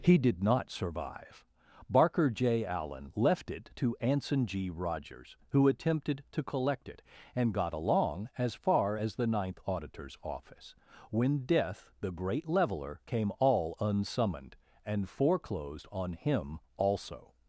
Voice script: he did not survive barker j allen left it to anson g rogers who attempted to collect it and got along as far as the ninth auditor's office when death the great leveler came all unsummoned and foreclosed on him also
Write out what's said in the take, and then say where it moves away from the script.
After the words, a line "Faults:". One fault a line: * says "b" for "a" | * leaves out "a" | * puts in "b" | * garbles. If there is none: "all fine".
he did not survive barker j allen left it to anson g rogers who attempted to collect it and got along as far as the ninth auditor's office when death the great leveler came all unsummoned and foreclosed on him also
Faults:
all fine